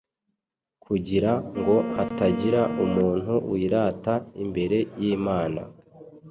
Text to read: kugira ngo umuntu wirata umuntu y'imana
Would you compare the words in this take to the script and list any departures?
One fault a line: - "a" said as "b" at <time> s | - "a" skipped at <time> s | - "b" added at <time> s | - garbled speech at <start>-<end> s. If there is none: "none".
- "hatagira" added at 1.9 s
- "umuntu" said as "imbere" at 4.4 s